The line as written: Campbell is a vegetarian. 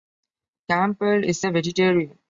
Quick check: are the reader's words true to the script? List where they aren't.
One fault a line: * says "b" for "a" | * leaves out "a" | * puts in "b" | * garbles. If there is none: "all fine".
all fine